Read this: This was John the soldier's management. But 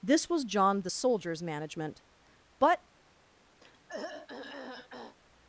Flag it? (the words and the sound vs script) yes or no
yes